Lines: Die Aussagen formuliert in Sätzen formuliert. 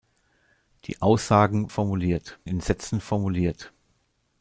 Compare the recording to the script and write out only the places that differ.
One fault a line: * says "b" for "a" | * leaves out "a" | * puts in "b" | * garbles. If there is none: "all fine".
all fine